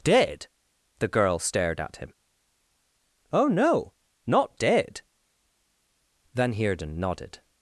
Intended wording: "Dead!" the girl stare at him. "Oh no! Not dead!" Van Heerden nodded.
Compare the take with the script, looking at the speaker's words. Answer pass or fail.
fail